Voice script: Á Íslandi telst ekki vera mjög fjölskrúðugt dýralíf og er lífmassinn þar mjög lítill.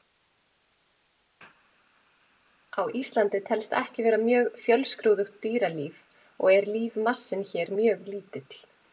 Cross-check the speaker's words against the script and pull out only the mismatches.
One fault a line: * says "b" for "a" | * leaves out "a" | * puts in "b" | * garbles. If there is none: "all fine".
* says "hér" for "þar"